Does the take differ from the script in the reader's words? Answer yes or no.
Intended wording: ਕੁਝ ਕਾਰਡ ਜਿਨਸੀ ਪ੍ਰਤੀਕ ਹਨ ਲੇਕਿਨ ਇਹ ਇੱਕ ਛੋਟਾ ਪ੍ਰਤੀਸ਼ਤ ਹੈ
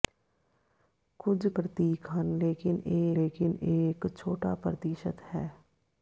yes